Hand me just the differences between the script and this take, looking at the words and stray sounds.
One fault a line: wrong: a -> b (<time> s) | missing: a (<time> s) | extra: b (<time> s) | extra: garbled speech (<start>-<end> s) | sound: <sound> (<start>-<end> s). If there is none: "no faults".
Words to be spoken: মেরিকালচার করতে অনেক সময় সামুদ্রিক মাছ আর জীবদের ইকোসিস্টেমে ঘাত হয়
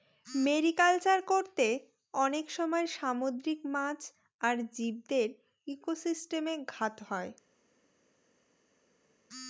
no faults